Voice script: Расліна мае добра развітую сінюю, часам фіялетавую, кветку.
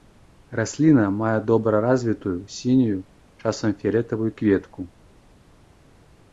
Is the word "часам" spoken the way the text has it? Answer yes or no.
yes